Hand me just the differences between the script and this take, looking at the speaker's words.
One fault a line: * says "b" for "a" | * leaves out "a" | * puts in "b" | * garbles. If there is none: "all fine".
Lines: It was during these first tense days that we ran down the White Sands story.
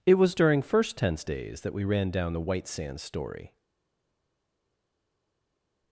* leaves out "these"